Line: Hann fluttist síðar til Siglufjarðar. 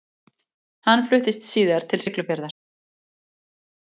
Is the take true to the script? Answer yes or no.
yes